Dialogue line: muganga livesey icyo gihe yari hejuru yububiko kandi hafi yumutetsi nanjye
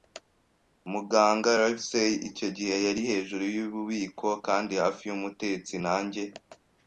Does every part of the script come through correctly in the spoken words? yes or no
yes